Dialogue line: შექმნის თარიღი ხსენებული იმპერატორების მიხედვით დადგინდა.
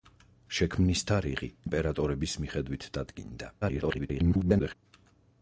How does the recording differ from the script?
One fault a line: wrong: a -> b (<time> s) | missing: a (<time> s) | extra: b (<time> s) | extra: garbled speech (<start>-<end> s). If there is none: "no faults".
missing: ხსენებული (1.5 s)
extra: garbled speech (3.6-4.7 s)